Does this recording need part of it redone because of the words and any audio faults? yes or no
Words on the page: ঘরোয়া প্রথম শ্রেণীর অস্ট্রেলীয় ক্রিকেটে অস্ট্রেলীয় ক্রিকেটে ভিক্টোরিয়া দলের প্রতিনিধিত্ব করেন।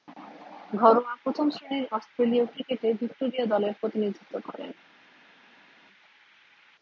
yes